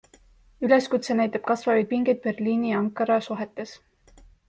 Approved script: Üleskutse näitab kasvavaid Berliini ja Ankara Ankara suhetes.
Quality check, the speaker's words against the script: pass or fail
fail